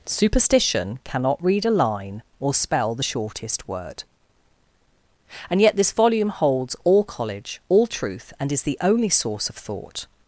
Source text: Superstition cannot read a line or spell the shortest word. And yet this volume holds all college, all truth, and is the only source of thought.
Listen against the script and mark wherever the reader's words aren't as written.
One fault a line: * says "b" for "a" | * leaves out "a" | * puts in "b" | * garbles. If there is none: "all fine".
all fine